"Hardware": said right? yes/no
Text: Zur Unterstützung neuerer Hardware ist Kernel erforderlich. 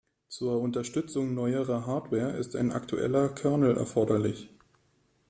yes